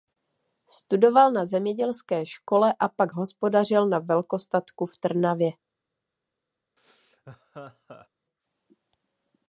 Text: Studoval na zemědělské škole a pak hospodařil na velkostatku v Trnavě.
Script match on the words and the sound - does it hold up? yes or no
no